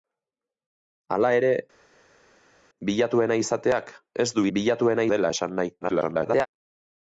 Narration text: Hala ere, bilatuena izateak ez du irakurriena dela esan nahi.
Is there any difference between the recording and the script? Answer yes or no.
yes